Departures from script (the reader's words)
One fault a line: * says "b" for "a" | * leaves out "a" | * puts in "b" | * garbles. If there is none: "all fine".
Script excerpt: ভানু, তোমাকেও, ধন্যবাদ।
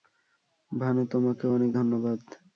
* puts in "অনেক"